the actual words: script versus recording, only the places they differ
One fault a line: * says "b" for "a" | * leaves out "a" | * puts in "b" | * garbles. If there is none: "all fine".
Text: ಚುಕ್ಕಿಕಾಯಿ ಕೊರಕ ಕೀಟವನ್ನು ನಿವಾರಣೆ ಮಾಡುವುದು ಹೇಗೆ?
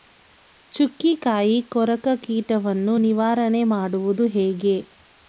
all fine